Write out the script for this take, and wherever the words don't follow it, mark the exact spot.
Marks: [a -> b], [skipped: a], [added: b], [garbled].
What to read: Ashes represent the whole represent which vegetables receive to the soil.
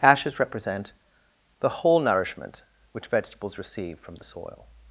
Ashes represent the whole [represent -> nourishment] which vegetables receive [to -> from] the soil.